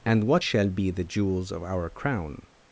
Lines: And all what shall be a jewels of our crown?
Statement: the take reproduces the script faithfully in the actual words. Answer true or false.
false